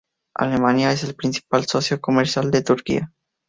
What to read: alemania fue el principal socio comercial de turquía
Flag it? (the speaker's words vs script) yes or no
yes